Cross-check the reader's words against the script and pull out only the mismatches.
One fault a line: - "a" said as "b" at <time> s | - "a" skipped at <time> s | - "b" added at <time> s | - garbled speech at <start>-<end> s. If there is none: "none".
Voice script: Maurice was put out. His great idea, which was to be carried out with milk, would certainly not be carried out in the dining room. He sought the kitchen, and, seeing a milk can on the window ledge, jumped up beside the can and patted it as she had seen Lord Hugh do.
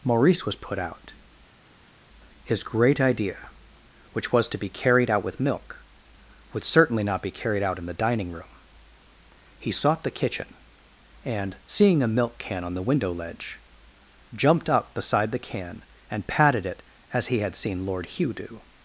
- "she" said as "he" at 17.3 s